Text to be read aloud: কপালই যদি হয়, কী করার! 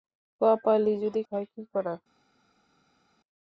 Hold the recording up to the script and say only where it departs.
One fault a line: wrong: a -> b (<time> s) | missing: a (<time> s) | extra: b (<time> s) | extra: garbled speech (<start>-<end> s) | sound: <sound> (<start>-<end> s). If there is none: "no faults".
no faults